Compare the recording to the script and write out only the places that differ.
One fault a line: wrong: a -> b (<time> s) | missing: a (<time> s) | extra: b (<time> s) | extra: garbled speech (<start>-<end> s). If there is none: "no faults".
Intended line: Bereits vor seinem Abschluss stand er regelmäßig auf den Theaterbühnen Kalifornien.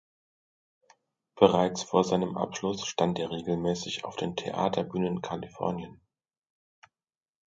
no faults